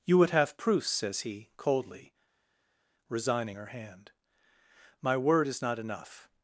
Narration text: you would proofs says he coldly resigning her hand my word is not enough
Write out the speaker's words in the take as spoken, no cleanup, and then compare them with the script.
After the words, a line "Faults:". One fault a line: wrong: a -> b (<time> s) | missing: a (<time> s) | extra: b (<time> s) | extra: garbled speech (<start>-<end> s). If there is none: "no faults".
you would have proofs says he coldly resigning her hand my word is not enough
Faults:
extra: have (0.3 s)